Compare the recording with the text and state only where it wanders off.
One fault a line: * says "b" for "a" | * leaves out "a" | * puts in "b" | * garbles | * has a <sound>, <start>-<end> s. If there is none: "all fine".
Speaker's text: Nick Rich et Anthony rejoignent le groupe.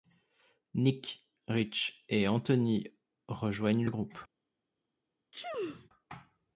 * has a sneeze, 5.3-5.9 s